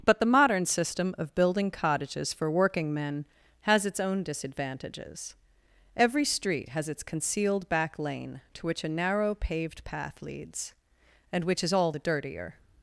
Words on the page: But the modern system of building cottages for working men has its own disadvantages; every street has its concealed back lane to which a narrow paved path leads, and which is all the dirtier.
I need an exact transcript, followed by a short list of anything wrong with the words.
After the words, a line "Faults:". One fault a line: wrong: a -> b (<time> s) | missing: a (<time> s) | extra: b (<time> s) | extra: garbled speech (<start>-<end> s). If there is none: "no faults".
But the modern system of building cottages for working men has its own disadvantages; every street has its concealed back lane to which a narrow paved path leads, and which is all the dirtier.
Faults:
no faults